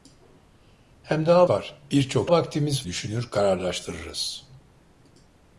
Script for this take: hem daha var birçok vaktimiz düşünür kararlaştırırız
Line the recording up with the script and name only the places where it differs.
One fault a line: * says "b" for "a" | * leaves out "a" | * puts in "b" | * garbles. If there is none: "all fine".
all fine